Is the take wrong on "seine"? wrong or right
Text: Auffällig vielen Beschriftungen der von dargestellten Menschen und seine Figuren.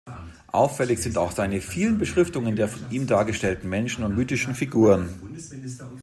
wrong